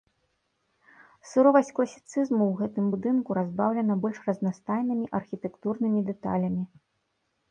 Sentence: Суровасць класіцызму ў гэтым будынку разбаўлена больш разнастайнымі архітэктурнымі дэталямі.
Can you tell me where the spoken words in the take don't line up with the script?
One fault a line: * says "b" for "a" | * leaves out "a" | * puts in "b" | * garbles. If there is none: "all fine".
all fine